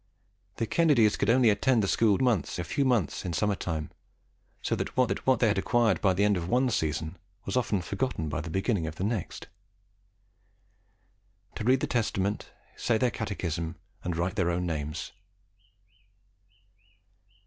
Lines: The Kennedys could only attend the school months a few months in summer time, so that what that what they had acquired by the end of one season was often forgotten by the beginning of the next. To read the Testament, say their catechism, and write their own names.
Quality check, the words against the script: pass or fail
pass